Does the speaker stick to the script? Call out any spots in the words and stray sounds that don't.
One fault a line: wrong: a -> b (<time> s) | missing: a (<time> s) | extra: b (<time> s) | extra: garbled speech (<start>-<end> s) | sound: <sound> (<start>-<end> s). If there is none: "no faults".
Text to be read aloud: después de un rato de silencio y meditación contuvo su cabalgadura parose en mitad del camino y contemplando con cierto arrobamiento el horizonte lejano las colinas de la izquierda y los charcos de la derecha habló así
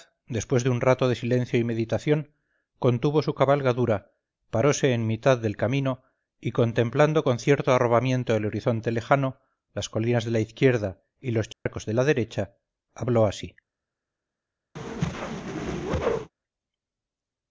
sound: dropout (11.5-11.7 s)
sound: whoosh (14.8-16.3 s)